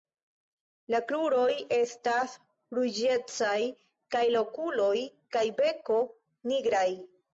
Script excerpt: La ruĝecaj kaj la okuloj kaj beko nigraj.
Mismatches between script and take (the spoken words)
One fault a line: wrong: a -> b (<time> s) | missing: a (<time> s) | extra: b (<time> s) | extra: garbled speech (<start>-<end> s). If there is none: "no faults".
extra: kruroj estas (1.1 s)